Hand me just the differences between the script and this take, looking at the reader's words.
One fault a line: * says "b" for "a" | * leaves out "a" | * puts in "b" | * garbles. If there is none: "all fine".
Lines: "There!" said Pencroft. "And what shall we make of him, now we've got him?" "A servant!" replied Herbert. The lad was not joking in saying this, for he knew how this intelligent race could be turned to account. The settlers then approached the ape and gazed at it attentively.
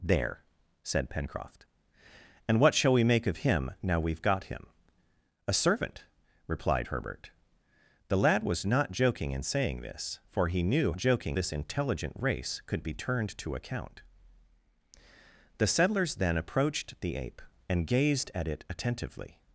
* says "joking" for "how"